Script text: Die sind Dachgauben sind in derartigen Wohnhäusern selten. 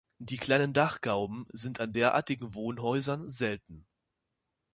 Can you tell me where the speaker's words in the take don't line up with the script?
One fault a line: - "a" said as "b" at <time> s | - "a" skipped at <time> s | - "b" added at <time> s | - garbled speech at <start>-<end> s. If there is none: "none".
- "sind" said as "kleinen" at 0.4 s
- "in" said as "an" at 1.8 s